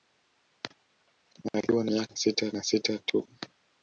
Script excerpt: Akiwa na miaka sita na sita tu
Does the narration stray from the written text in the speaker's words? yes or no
no